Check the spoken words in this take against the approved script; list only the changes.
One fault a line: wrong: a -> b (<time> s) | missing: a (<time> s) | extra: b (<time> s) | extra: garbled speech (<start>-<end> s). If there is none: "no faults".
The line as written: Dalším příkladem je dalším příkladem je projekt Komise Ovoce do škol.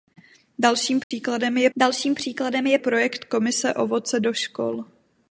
no faults